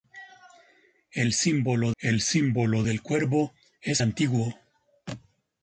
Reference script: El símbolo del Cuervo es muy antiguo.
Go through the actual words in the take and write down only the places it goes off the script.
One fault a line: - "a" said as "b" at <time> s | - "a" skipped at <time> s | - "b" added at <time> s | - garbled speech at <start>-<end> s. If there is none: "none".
- "el símbolo" added at 2.0 s
- "muy" skipped at 4.0 s